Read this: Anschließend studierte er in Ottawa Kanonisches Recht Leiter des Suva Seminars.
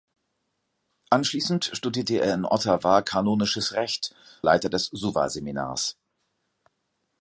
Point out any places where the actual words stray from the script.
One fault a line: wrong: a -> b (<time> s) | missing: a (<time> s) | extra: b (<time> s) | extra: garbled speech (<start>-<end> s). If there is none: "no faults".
no faults